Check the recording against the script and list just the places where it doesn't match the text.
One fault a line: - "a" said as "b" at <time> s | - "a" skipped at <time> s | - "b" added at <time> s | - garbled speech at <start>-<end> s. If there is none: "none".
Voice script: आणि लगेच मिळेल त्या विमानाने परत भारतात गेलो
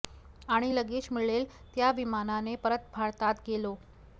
none